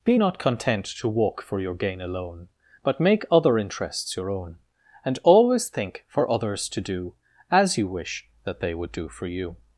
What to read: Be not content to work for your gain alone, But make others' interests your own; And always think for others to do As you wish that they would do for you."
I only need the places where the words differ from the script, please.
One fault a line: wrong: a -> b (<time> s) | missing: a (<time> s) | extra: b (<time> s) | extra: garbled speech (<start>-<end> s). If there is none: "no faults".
wrong: work -> walk (1.1 s)
wrong: others -> other (3.3 s)